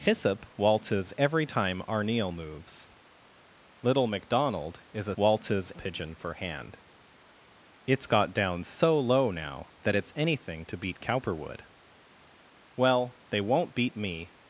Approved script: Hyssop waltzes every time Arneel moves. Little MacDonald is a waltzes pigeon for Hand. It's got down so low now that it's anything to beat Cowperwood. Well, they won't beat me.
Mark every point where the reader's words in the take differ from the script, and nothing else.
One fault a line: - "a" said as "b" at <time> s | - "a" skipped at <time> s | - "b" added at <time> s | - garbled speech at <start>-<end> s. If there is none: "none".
none